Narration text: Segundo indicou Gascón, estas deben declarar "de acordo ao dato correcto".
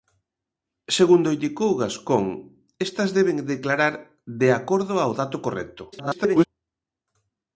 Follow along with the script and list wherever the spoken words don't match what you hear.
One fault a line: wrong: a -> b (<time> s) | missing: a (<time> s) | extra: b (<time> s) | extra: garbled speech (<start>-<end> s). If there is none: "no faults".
extra: garbled speech (5.9-6.5 s)